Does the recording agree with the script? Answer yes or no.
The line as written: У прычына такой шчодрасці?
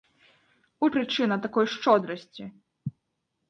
yes